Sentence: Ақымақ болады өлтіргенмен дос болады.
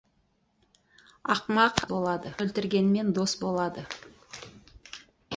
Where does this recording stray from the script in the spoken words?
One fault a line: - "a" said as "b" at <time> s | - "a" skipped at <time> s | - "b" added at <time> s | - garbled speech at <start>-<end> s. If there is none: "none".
none